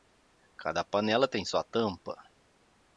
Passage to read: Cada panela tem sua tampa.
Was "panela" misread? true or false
false